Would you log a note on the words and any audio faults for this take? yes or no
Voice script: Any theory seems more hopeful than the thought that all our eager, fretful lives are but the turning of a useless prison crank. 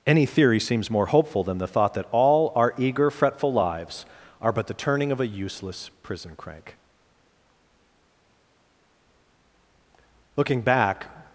yes